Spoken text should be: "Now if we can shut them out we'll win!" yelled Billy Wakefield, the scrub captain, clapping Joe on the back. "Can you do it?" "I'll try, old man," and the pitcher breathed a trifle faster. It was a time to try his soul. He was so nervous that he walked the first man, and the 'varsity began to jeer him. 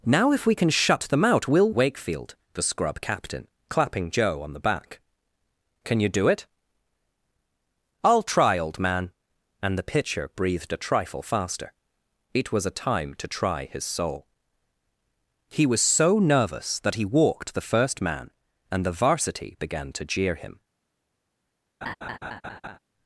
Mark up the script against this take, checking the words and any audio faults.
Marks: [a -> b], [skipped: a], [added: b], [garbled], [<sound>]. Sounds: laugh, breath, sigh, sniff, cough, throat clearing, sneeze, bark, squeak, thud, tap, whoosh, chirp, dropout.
"Now if we can shut them out we'll [skipped: win!" yelled Billy] Wakefield, the scrub captain, clapping Joe on the back. "Can you do it?" "I'll try, old man," and the pitcher breathed a trifle faster. It was a time to try his soul. He was so nervous that he walked the first man, and the 'varsity began to jeer him. [laugh]